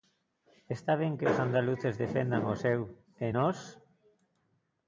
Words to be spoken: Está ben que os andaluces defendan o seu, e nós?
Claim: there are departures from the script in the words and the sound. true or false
false